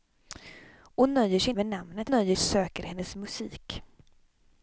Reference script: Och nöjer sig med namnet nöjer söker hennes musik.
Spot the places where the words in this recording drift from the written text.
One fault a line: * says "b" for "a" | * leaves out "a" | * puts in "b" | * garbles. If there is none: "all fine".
all fine